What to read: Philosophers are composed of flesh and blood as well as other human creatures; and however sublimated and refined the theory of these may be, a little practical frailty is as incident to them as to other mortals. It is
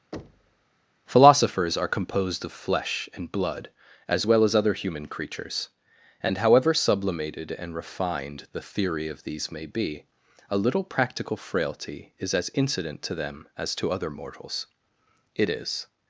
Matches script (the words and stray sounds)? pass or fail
fail